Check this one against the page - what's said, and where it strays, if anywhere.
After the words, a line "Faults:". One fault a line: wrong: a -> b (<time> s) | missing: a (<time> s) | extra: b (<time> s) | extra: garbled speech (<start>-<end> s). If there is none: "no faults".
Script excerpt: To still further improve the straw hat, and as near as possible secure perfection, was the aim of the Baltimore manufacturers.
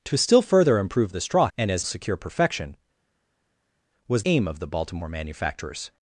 To still further improve the straw and as secure perfection, was aim of the Baltimore manufacturers.
Faults:
missing: hat (1.5 s)
missing: near as possible (1.9 s)
missing: the (4.2 s)